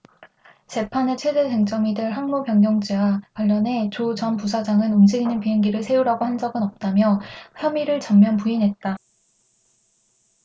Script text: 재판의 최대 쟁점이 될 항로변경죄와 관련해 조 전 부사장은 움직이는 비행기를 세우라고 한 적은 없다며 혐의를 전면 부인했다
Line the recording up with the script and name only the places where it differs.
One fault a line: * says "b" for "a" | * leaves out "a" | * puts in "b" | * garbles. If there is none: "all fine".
all fine